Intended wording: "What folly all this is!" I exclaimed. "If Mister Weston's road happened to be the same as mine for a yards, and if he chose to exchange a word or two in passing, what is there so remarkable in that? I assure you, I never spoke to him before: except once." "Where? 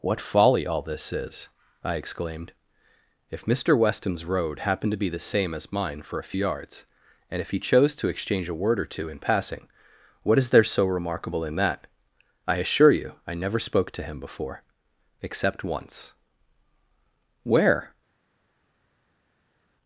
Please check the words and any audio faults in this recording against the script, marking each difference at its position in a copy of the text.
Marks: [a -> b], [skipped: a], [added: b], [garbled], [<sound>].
"What folly all this is!" I exclaimed. "If Mister Weston's road happened to be the same as mine for a yards, and if he chose to exchange a word or two in passing, what is there so remarkable in that? I assure you, I never spoke to him before: except once." "Where?